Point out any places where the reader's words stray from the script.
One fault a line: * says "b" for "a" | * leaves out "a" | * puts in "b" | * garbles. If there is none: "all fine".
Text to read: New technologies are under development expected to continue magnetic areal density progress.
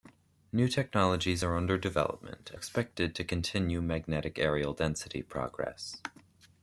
all fine